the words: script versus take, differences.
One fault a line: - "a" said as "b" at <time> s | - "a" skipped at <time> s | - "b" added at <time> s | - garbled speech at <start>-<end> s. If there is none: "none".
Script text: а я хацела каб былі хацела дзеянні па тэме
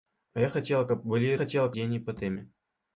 none